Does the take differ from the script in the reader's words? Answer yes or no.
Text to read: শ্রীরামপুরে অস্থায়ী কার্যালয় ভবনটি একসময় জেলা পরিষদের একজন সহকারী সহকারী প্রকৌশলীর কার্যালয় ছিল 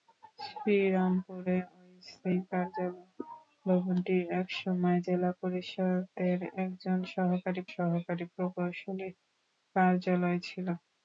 no